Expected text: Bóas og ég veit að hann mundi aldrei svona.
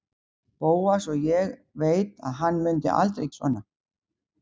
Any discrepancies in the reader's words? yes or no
no